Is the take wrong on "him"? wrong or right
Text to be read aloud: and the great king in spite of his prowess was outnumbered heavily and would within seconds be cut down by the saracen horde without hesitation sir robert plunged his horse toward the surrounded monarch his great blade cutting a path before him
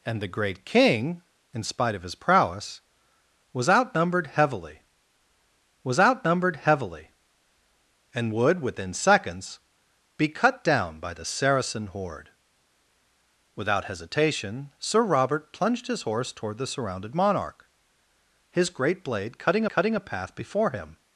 right